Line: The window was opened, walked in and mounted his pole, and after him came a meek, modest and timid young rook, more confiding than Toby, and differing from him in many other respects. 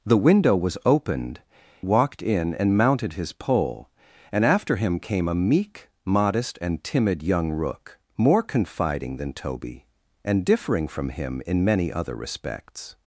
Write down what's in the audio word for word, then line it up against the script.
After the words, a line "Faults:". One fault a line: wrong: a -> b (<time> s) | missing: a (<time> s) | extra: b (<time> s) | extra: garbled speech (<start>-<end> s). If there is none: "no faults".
The window was opened, walked in and mounted his pole, and after him came a meek, modest and timid young rook, more confiding than Toby, and differing from him in many other respects.
Faults:
no faults